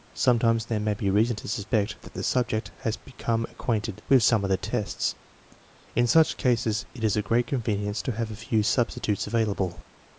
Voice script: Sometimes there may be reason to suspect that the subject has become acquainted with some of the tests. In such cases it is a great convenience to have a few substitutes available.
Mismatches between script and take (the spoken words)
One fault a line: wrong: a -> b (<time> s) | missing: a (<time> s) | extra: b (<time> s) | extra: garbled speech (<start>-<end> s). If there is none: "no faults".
no faults